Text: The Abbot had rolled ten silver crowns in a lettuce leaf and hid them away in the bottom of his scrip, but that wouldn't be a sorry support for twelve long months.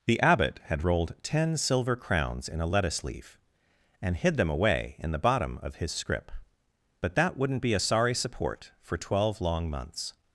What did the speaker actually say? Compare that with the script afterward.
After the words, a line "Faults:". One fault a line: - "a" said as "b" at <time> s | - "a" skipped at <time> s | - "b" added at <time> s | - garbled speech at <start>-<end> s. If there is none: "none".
The Abbot had rolled ten silver crowns in a lettuce leaf and hid them away in the bottom of his scrip, but that wouldn't be a sorry support for twelve long months.
Faults:
none